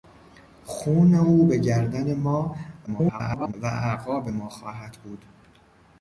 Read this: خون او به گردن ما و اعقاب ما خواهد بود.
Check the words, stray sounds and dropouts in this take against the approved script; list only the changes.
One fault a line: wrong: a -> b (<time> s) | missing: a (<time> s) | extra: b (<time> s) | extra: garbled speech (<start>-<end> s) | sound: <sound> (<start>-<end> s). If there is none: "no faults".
extra: garbled speech (2.9-3.5 s)